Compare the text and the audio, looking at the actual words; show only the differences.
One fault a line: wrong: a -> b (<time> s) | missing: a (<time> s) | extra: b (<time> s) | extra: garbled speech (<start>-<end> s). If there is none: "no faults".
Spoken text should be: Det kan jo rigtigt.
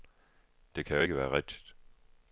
extra: ikke være (1.0 s)